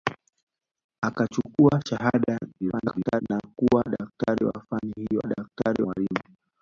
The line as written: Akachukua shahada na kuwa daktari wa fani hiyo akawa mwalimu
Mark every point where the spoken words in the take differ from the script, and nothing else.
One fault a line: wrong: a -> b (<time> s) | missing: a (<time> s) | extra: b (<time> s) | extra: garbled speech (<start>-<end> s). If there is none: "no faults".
extra: garbled speech (2.6-3.2 s)
wrong: akawa -> daktari (5.2 s)